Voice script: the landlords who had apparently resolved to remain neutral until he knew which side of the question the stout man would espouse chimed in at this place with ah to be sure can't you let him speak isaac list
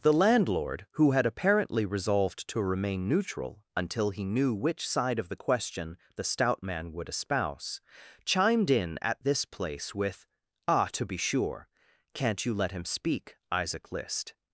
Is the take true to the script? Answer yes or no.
no